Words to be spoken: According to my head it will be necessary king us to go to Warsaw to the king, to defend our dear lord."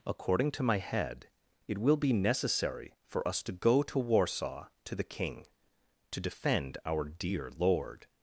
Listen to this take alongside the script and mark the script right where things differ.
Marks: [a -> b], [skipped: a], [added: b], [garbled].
According to my head it will be necessary [king -> for] us to go to Warsaw to the king, to defend our dear lord."